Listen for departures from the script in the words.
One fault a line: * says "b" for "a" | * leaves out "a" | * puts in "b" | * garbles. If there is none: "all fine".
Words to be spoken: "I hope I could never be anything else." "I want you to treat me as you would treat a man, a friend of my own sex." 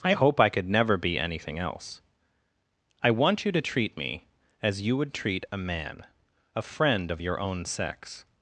* says "your" for "my"